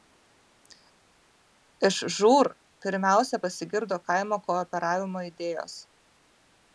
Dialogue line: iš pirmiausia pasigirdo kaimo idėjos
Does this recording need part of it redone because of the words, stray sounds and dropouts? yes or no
yes